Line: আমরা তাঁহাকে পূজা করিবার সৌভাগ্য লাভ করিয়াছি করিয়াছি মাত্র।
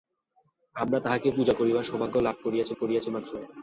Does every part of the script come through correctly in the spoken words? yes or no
yes